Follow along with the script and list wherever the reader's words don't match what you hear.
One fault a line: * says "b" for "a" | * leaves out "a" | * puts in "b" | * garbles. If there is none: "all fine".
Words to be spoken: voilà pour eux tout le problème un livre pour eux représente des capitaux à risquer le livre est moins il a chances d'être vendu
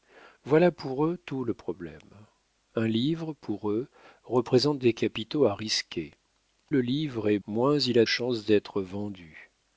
all fine